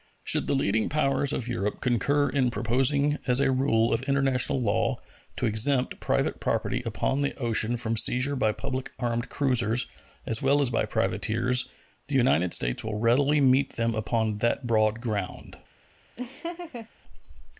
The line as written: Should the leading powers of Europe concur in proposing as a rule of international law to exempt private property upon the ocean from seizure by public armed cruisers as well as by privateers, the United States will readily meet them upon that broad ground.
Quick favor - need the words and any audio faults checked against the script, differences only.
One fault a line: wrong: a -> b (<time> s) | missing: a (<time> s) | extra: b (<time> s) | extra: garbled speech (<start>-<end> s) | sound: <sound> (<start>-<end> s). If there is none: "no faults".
sound: laugh (16.2-16.9 s)